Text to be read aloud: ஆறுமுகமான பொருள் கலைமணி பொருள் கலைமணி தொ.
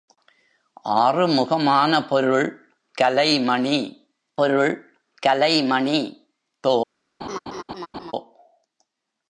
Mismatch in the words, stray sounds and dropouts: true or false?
true